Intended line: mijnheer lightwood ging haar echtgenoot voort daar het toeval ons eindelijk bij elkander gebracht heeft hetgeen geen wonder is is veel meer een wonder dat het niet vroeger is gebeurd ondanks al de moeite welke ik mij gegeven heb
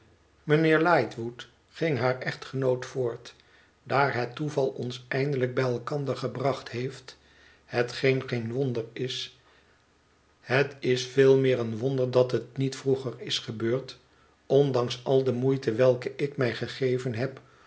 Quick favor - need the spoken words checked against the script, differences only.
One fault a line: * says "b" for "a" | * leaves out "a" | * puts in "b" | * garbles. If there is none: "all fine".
* puts in "het"